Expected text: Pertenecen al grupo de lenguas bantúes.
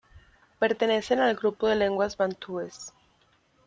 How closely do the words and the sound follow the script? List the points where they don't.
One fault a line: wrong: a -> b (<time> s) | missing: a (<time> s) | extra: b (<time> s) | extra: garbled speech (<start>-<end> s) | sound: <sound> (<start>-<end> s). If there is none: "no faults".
no faults